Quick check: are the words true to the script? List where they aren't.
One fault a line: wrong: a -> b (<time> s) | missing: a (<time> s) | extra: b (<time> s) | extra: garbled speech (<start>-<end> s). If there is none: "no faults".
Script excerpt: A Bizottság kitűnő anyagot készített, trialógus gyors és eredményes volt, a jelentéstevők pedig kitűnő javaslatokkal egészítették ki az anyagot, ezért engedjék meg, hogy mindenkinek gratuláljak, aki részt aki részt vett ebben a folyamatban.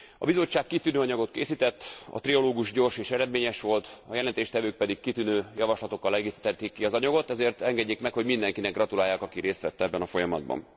extra: a (2.1 s)
missing: aki részt (9.6 s)